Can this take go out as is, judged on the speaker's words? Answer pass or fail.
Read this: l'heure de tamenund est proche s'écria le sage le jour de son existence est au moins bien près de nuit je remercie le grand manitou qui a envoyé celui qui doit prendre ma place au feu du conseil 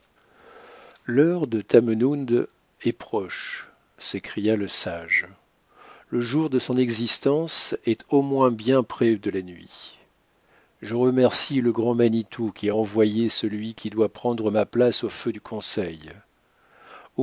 fail